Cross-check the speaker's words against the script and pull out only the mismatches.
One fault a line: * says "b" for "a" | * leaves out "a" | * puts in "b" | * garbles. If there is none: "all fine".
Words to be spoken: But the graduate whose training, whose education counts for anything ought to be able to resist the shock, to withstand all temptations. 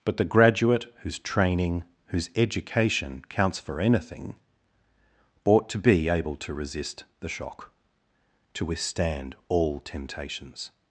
all fine